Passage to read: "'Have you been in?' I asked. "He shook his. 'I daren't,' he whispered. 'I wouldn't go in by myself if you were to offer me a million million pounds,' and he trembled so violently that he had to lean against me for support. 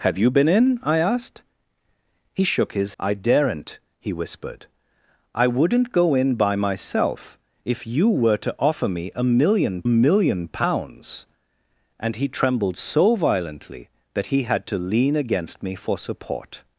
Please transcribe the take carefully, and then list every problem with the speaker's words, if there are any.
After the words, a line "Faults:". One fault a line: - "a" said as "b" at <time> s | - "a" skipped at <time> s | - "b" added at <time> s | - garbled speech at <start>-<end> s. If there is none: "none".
"'Have you been in?' I asked. "He shook his. 'I daren't,' he whispered. 'I wouldn't go in by myself if you were to offer me a million million pounds,' and he trembled so violently that he had to lean against me for support.
Faults:
none